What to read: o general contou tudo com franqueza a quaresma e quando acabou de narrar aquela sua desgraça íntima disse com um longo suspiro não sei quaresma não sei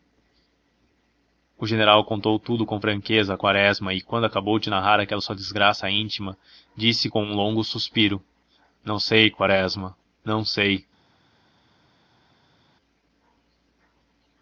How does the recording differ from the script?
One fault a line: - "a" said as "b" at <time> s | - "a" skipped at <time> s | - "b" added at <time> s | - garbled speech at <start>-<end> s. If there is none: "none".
none